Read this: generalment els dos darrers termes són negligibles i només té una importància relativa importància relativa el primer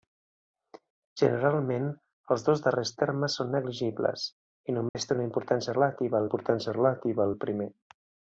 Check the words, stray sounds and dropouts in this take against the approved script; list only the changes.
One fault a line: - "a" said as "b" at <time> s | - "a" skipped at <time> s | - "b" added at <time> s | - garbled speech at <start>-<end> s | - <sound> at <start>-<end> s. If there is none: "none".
- dropout at 4.9-4.9 s